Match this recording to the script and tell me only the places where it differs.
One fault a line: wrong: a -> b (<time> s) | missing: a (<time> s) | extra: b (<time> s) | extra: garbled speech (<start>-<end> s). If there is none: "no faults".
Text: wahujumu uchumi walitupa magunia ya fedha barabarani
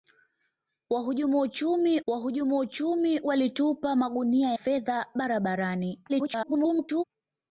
extra: wahujumu uchumi (2.1 s)
missing: ya (4.5 s)
extra: garbled speech (6.1-7.0 s)